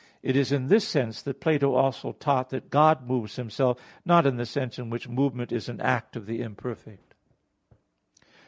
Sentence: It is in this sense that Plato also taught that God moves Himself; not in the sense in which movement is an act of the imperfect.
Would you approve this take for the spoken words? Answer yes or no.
yes